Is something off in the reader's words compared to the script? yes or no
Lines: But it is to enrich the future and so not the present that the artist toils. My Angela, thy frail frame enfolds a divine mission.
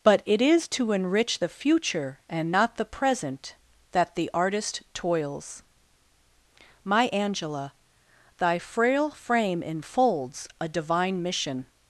yes